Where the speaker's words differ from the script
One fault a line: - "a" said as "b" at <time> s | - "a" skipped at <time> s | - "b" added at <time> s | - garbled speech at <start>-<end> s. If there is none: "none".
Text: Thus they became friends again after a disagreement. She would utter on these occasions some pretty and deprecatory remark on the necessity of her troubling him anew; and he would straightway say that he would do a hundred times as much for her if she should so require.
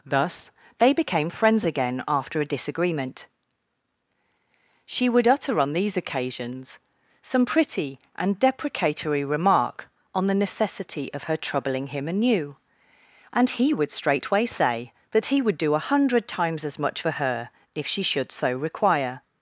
none